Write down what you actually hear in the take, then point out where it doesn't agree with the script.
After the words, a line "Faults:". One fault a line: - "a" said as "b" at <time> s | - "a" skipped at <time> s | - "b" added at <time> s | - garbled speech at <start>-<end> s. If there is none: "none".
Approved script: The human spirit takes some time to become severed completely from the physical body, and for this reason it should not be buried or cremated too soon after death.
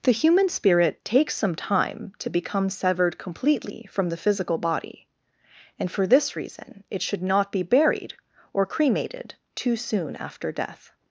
The human spirit takes some time to become severed completely from the physical body, and for this reason it should not be buried or cremated too soon after death.
Faults:
none